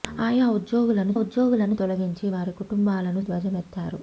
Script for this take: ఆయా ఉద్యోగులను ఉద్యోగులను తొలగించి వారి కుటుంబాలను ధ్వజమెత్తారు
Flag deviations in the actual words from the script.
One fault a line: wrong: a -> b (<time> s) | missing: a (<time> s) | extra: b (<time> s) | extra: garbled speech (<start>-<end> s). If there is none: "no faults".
no faults